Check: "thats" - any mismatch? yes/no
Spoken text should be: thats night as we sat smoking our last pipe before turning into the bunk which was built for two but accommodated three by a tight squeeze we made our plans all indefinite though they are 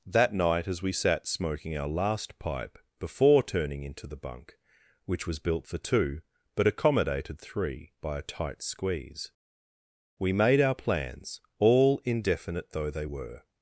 yes